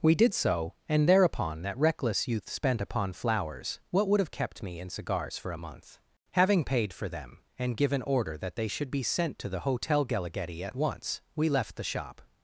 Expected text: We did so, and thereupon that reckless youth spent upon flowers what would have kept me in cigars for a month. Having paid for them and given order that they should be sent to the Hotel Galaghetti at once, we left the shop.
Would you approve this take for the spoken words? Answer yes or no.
yes